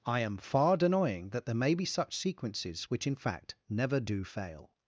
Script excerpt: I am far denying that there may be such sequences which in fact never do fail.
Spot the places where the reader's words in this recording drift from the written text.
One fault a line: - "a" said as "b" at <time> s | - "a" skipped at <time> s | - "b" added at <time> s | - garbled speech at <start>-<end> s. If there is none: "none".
none